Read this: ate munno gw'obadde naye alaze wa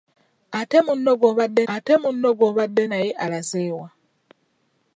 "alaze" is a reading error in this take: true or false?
false